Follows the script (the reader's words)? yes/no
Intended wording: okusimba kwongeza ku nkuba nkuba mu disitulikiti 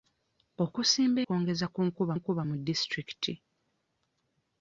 yes